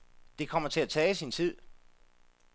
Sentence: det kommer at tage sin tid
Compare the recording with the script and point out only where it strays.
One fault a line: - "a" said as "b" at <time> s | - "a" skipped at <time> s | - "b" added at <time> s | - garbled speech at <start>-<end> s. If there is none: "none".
- "til" added at 0.7 s